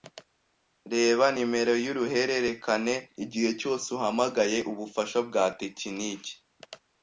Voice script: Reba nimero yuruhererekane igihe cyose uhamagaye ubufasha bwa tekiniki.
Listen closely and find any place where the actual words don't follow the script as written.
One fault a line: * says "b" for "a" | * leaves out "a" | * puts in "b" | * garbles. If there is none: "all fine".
all fine